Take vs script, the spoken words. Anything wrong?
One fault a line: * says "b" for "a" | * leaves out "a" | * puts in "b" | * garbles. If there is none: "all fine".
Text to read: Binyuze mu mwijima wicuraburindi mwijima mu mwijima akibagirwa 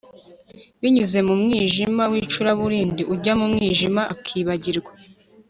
* says "ujya" for "mwijima"